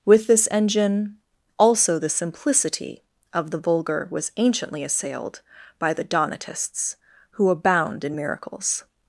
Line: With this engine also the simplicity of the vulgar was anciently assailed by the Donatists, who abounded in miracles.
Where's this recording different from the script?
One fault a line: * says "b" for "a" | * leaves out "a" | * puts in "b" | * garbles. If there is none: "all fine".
* says "abound" for "abounded"